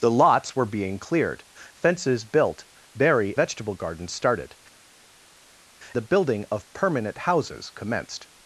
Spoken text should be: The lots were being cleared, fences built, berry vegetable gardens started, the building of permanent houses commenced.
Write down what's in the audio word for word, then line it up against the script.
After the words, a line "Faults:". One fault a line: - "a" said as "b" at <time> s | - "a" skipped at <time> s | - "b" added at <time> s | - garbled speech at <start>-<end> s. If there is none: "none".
The lots were being cleared, fences built, berry vegetable gardens started, the building of permanent houses commenced.
Faults:
none